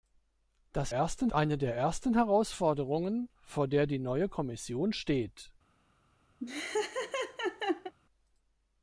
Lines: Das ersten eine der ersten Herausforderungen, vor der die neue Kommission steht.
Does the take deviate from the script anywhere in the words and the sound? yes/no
yes